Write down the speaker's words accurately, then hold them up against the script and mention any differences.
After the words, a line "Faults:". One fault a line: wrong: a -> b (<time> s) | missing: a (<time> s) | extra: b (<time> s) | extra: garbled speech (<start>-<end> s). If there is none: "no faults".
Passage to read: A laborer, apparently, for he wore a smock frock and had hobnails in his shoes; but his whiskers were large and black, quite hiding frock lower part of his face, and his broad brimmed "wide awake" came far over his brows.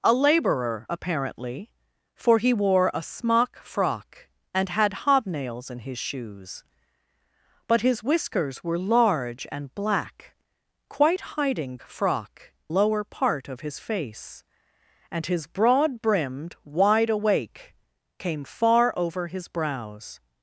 A laborer, apparently, for he wore a smock frock and had hobnails in his shoes; but his whiskers were large and black, quite hiding frock lower part of his face, and his broad brimmed "wide awake" came far over his brows.
Faults:
no faults